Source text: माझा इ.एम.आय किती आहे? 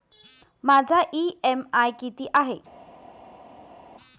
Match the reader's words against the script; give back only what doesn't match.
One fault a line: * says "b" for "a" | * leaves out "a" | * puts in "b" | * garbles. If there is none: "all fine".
all fine